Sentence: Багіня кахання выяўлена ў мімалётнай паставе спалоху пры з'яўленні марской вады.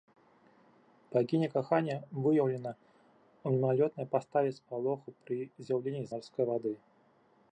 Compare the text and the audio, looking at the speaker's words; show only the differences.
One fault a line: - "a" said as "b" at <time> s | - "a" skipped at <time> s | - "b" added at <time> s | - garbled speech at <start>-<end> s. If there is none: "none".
none